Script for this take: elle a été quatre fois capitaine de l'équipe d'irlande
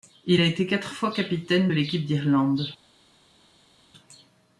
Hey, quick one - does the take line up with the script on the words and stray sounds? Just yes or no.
no